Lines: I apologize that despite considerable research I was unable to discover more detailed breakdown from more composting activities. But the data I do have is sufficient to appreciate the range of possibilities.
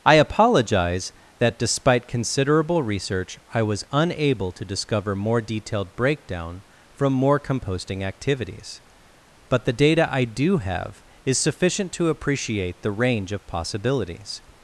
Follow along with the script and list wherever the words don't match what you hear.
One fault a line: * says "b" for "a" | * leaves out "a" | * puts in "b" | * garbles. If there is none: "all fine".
all fine